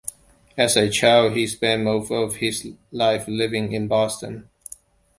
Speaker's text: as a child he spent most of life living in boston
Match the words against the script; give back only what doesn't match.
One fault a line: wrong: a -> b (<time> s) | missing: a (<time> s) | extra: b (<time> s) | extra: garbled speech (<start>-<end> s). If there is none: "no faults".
extra: his (2.4 s)